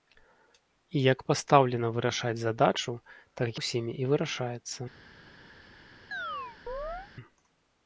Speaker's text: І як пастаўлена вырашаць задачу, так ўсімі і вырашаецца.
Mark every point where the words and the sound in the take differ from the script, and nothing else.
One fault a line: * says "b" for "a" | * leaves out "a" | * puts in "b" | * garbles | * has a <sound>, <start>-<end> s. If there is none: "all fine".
* has a chirp, 6.1-7.1 s